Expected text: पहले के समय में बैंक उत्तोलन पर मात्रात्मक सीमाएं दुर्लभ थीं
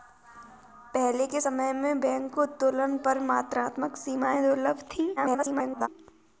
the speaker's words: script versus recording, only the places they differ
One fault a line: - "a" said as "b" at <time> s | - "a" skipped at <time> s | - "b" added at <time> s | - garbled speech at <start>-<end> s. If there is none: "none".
- garbled speech at 5.2-5.9 s